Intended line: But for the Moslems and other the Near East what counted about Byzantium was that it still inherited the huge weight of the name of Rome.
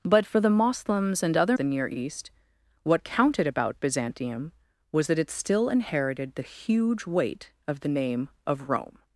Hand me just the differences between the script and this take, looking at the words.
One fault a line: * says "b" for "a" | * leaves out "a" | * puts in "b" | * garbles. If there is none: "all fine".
all fine